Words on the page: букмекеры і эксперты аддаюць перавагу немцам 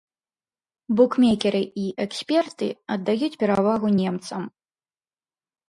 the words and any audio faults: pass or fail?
pass